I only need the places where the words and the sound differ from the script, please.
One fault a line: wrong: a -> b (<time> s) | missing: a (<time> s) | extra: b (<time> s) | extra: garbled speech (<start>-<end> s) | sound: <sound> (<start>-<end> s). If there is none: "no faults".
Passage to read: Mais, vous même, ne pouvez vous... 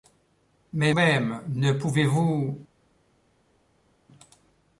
missing: vous (0.9 s)